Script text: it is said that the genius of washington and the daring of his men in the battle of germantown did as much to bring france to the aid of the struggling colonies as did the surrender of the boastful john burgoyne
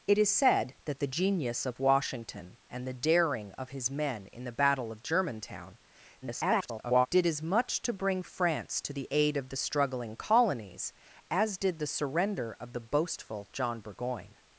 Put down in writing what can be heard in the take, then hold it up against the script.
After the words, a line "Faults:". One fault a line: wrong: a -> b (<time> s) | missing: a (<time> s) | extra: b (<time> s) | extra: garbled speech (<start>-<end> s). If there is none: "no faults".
it is said that the genius of washington and the daring of his men in the battle of germantown [garbled] did as much to bring france to the aid of the struggling colonies as did the surrender of the boastful john burgoyne
Faults:
extra: garbled speech (6.2-7.1 s)